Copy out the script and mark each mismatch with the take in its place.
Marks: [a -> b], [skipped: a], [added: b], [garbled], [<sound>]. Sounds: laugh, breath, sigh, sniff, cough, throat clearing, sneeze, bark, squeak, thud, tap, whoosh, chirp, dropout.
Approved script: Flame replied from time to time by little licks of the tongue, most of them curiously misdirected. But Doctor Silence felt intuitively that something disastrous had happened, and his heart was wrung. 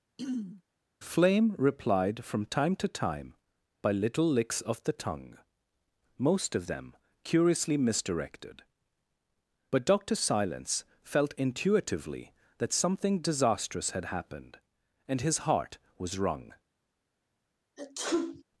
[throat clearing] Flame replied from time to time by little licks of the tongue, most of them curiously misdirected. But Doctor Silence felt intuitively that something disastrous had happened, and his heart was wrung. [sneeze]